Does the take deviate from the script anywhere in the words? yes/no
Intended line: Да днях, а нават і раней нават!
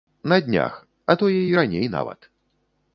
yes